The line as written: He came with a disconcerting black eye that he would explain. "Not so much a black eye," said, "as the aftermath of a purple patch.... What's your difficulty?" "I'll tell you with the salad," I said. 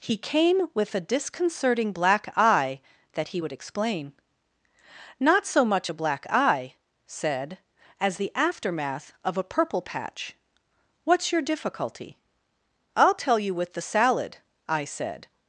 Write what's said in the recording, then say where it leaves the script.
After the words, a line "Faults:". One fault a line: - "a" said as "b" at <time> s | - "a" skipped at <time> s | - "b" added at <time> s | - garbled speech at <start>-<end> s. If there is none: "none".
He came with a disconcerting black eye that he would explain. "Not so much a black eye," said, "as the aftermath of a purple patch.... What's your difficulty?" "I'll tell you with the salad," I said.
Faults:
none